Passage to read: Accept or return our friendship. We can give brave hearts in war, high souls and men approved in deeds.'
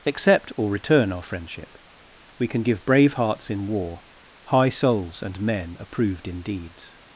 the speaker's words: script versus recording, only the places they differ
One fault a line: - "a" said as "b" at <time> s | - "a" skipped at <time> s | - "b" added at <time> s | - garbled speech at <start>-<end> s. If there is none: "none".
none